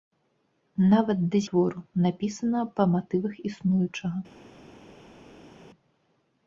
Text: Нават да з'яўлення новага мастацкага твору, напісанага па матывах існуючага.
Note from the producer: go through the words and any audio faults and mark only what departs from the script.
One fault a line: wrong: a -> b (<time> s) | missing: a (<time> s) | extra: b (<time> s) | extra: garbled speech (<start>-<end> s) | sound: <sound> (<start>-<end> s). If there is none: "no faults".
missing: з'яўлення новага мастацкага (1.4 s)